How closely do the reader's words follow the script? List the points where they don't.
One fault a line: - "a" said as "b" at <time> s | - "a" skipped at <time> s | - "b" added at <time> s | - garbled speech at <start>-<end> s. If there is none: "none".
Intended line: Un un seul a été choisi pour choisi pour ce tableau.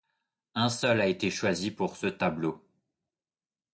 - "un" skipped at 0.7 s
- "choisi pour" skipped at 1.9 s